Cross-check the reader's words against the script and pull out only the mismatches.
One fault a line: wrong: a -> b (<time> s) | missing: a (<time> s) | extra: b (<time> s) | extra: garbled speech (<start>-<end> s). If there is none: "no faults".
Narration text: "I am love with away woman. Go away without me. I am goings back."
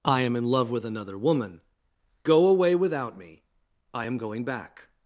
extra: in (0.3 s)
wrong: away -> another (0.8 s)
wrong: goings -> going (4.2 s)